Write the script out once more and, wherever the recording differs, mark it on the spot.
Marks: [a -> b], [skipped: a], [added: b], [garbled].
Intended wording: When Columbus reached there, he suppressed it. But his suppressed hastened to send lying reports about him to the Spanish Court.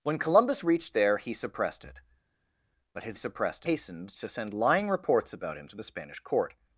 When Columbus reached there, he suppressed it. But his suppressed hastened to send lying reports about him to the Spanish Court.